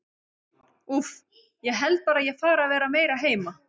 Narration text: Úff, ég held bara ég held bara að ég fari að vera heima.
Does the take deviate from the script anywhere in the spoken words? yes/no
yes